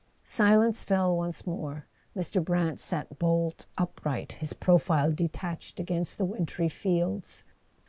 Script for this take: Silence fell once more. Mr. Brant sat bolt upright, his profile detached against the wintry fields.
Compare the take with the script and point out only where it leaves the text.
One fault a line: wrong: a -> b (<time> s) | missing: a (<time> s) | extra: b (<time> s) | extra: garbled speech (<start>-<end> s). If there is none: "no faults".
no faults